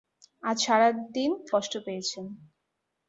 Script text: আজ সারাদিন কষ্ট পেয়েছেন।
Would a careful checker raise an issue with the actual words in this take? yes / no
no